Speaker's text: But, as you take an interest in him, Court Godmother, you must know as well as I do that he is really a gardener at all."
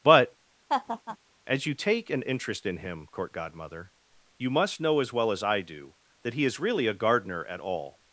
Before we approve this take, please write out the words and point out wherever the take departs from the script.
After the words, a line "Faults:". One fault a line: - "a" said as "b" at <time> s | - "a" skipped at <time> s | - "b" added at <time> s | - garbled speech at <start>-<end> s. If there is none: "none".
But, as you take an interest in him, Court Godmother, you must know as well as I do that he is really a gardener at all."
Faults:
none